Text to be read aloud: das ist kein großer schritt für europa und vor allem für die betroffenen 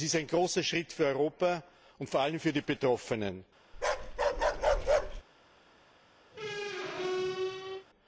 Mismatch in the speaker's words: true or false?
true